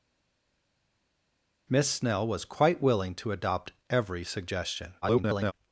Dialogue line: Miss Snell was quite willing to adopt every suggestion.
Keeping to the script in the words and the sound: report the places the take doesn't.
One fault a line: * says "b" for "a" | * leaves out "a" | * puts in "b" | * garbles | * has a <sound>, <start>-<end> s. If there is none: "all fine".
* garbles